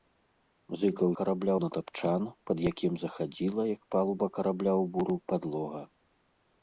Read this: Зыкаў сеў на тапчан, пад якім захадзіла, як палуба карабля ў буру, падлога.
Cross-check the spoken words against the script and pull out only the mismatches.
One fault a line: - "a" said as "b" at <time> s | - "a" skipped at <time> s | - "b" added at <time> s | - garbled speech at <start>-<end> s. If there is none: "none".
- "сеў" said as "карабля" at 1.2 s